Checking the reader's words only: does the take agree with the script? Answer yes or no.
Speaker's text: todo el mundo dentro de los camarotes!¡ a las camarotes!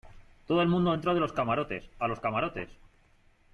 no